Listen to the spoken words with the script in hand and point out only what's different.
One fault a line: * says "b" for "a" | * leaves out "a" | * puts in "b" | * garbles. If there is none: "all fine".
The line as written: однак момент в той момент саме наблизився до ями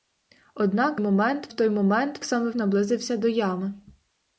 all fine